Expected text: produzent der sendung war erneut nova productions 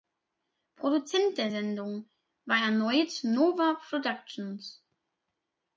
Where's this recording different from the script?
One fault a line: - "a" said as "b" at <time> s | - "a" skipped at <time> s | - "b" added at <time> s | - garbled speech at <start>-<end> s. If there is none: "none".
none